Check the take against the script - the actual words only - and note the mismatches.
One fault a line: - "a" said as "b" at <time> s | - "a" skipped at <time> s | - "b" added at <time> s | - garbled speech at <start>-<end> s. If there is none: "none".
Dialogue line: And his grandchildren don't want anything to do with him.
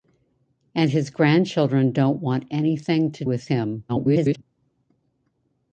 - "do" skipped at 3.2 s
- garbled speech at 3.9-4.4 s